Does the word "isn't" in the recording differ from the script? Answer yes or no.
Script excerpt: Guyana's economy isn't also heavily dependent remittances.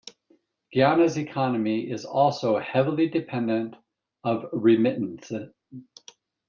yes